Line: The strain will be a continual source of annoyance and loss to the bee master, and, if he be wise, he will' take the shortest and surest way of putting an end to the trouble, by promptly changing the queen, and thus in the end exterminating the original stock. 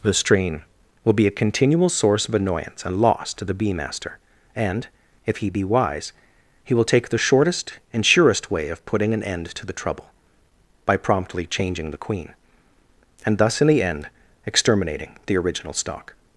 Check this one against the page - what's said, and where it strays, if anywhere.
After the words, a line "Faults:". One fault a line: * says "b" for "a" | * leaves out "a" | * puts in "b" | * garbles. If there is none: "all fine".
The strain will be a continual source of annoyance and loss to the bee master, and, if he be wise, he will' take the shortest and surest way of putting an end to the trouble, by promptly changing the queen, and thus in the end exterminating the original stock.
Faults:
all fine